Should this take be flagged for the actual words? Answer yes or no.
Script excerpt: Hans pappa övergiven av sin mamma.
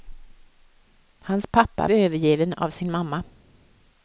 no